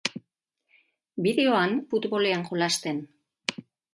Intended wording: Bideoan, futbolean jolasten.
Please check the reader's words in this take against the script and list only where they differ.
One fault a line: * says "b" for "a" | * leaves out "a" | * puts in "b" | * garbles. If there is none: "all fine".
all fine